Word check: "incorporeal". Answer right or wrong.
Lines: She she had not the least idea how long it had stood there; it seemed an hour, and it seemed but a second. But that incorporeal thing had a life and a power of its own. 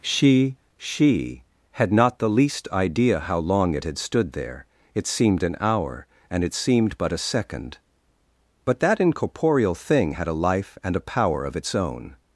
right